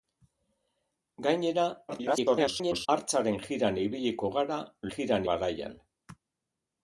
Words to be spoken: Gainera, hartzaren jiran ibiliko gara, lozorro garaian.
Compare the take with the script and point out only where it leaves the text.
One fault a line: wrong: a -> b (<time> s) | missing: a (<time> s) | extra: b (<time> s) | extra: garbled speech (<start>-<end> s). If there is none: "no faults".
extra: garbled speech (1.9-2.9 s)
wrong: lozorro -> jiran (5.0 s)